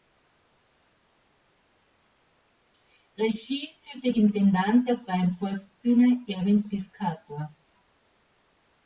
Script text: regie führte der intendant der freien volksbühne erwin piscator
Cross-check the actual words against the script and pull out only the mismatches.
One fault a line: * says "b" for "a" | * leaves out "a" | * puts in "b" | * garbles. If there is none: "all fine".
* leaves out "der"